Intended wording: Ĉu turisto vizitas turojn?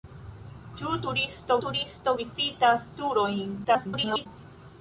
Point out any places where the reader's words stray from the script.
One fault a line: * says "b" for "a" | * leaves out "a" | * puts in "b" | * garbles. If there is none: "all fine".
* puts in "turisto"
* garbles